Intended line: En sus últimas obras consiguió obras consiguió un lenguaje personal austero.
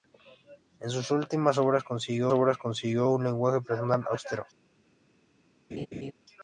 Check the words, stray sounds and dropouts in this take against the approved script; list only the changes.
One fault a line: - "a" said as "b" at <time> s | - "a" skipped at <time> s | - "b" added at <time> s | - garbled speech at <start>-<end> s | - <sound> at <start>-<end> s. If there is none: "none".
- laugh at 5.7-6.1 s